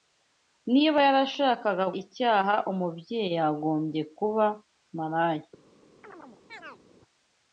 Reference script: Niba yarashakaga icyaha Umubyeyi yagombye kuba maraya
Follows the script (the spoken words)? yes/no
yes